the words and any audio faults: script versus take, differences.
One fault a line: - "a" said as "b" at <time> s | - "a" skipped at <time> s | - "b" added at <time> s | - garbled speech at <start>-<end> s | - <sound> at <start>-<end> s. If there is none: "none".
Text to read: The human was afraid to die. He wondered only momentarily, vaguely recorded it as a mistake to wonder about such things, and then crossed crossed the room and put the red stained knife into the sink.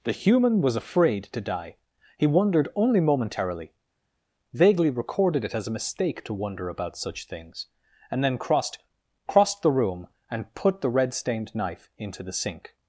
none